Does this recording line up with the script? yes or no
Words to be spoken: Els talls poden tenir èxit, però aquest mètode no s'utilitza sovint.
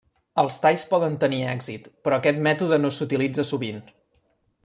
yes